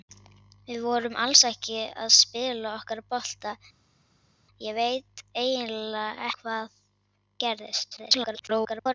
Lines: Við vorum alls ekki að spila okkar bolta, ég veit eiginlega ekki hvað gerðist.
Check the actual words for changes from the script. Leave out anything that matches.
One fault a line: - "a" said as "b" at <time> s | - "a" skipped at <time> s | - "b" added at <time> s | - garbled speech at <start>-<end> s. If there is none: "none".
- "ekki" skipped at 6.3 s
- garbled speech at 8.0-8.9 s